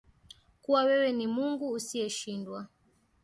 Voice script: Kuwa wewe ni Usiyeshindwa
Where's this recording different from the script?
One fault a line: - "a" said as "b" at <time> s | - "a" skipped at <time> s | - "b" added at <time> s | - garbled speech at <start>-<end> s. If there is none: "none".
- "Mungu" added at 1.3 s